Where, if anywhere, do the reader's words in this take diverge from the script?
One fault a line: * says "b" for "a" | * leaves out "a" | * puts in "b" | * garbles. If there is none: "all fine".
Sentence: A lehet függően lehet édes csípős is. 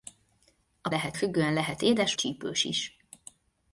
all fine